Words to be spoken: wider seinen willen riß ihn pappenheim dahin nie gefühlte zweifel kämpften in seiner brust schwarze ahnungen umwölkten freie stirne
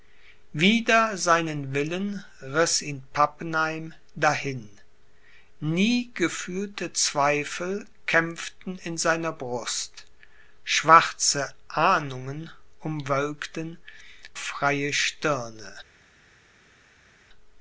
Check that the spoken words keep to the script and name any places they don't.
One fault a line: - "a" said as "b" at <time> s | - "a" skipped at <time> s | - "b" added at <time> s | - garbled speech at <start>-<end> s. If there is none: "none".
none